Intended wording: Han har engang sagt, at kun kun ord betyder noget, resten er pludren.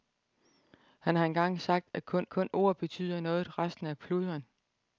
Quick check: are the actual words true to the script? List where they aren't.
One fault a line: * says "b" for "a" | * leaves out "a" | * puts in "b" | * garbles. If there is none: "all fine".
all fine